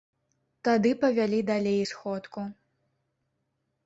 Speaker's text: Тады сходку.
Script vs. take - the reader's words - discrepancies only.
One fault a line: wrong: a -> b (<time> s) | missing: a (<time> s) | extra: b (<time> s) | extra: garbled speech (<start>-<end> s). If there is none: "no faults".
extra: павялі далей (1.0 s)